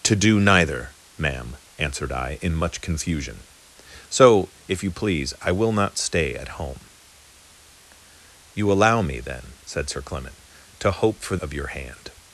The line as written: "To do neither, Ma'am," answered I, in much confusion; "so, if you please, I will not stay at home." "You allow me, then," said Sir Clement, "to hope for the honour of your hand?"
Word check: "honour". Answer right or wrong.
wrong